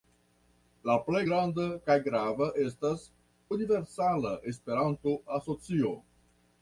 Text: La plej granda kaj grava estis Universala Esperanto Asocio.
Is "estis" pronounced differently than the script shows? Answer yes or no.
yes